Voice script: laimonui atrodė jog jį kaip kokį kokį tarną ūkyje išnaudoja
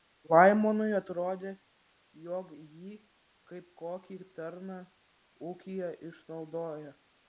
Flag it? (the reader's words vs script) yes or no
yes